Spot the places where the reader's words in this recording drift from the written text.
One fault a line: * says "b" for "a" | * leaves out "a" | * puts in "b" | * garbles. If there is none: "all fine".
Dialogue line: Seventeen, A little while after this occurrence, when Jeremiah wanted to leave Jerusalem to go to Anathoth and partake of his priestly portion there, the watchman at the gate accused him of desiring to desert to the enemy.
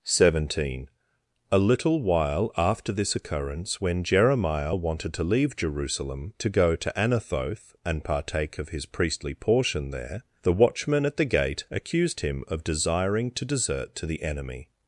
all fine